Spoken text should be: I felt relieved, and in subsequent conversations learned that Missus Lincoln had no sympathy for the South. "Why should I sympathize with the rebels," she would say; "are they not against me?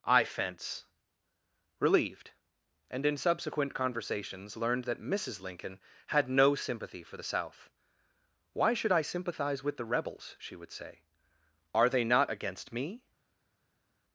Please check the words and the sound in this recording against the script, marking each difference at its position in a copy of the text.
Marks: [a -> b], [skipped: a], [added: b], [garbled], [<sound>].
I [felt -> fence] relieved, and in subsequent conversations learned that Missus Lincoln had no sympathy for the South. "Why should I sympathize with the rebels," she would say; "are they not against me?